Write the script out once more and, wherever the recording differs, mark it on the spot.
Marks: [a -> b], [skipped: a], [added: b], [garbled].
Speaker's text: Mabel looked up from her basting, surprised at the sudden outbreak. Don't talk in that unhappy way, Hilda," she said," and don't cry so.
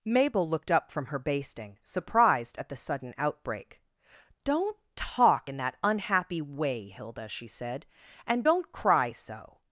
Mabel looked up from her basting, surprised at the sudden outbreak. Don't talk in that unhappy way, Hilda," she said," and don't cry so.